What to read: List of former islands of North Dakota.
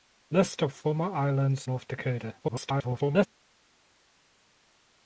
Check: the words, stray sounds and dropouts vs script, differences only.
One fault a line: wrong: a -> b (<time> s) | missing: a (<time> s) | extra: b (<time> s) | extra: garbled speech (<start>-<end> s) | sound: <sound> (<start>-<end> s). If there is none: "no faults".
missing: of (1.7 s)
extra: garbled speech (2.4-3.3 s)